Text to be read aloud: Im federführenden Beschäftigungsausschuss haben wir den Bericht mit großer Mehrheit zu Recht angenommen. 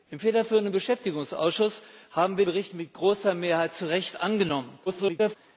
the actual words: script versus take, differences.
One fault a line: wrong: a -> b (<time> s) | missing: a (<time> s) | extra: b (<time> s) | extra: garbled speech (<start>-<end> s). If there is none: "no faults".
missing: den (2.5 s)
extra: garbled speech (4.9-5.4 s)